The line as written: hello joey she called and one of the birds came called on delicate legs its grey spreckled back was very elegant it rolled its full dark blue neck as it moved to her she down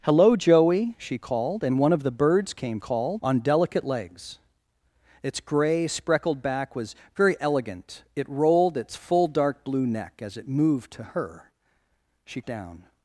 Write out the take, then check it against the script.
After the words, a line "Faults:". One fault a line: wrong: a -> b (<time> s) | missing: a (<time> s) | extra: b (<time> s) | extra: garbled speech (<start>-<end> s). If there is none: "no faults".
hello joey she called and one of the birds came called on delicate legs its grey spreckled back was very elegant it rolled its full dark blue neck as it moved to her she down
Faults:
no faults